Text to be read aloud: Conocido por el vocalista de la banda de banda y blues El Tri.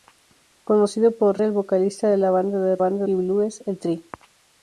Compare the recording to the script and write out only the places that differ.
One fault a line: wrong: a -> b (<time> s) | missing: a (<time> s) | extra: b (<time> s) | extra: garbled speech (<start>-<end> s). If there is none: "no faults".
no faults